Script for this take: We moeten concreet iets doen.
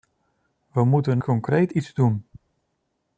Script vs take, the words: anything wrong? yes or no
no